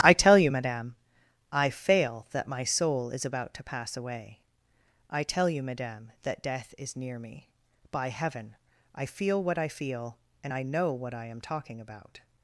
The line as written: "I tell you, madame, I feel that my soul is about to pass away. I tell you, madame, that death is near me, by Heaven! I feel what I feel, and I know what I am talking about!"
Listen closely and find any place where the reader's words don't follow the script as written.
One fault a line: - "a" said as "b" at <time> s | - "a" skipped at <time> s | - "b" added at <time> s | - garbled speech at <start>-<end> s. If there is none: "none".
- "feel" said as "fail" at 1.7 s